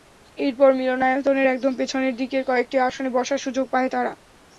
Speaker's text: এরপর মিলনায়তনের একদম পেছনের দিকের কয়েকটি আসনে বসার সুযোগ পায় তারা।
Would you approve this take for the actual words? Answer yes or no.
yes